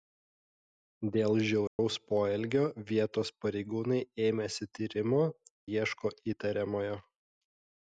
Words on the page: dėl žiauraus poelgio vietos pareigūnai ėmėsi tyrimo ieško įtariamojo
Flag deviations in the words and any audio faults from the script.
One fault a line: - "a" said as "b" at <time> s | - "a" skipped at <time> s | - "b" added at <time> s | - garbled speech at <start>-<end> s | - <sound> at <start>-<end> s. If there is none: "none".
- dropout at 1.7-1.8 s